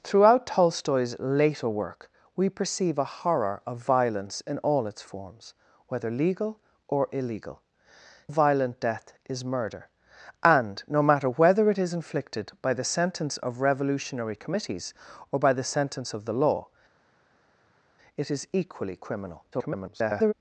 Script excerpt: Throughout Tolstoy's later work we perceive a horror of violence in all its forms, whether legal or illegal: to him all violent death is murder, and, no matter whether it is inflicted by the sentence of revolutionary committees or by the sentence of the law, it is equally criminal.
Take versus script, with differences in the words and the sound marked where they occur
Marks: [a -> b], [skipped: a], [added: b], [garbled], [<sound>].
Throughout Tolstoy's later work we perceive a horror of violence in all its forms, whether legal or illegal: [skipped: to him all] violent death is murder, and, no matter whether it is inflicted by the sentence of revolutionary committees or by the sentence of the law, it is equally criminal. [garbled]